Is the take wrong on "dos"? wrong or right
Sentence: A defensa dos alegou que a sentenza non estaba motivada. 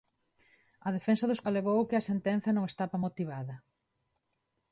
right